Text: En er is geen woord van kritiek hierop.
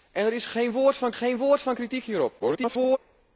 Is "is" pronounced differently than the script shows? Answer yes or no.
no